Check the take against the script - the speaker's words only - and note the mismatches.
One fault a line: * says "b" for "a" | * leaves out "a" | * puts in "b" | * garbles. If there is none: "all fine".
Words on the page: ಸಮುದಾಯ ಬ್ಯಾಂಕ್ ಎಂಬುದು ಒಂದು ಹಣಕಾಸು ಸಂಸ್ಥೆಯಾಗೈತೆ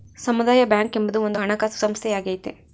all fine